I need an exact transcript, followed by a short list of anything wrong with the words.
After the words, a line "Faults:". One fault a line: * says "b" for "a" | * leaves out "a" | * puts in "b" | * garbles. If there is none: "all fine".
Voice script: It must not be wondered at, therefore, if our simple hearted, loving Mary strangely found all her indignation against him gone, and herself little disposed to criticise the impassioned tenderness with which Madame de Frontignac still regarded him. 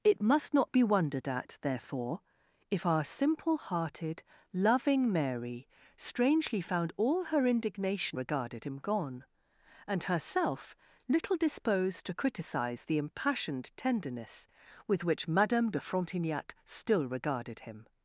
It must not be wondered at, therefore, if our simple hearted, loving Mary strangely found all her indignation regarded him gone, and herself little disposed to criticise the impassioned tenderness with which Madame de Frontignac still regarded him.
Faults:
* says "regarded" for "against"